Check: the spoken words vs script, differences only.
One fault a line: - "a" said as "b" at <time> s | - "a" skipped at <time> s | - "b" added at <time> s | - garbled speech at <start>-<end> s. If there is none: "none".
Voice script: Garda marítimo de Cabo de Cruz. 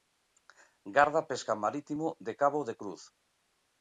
- "pesca" added at 1.3 s